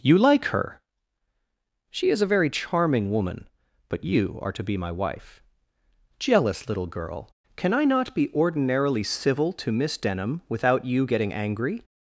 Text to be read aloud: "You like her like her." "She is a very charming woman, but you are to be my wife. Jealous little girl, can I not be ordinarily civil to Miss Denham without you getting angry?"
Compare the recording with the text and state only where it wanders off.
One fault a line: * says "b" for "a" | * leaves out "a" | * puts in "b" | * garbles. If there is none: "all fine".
* leaves out "like her"